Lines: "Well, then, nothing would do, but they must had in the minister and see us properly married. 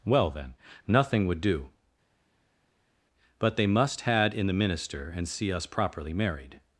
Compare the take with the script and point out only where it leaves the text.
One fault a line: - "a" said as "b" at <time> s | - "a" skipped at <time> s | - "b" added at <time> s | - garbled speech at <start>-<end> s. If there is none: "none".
none